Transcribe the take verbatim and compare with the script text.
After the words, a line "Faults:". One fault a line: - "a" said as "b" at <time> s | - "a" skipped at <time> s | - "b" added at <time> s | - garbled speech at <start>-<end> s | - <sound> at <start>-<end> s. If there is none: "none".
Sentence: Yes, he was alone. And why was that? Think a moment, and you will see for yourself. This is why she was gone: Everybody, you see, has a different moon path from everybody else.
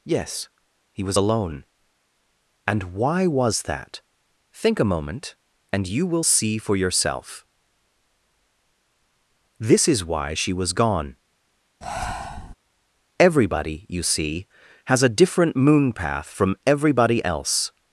Yes, he was alone. And why was that? Think a moment, and you will see for yourself. This is why she was gone: Everybody, you see, has a different moon path from everybody else.
Faults:
- breath at 11.8-12.5 s